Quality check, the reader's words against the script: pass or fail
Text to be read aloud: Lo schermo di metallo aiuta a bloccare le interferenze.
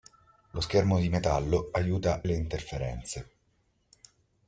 fail